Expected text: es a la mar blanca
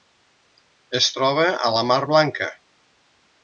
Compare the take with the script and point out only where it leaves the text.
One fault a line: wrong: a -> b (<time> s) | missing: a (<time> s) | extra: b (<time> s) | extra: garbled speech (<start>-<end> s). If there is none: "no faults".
extra: troba (1.2 s)